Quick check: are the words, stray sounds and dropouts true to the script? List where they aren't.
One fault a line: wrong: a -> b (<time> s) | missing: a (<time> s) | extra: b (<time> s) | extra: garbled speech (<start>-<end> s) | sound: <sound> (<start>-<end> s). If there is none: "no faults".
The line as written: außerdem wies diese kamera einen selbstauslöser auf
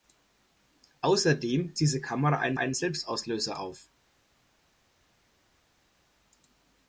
missing: wies (1.8 s)
extra: einen (2.6 s)